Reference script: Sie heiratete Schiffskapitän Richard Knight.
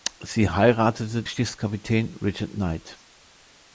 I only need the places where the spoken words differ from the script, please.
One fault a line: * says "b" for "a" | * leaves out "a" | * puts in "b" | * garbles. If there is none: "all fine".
all fine